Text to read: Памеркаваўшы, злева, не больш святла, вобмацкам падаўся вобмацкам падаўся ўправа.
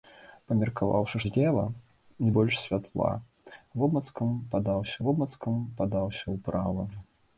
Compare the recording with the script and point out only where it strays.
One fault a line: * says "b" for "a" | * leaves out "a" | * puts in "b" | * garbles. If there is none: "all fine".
all fine